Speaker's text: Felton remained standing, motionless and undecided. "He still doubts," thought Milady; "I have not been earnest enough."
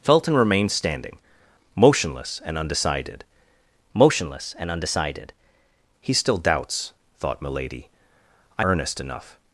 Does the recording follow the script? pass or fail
fail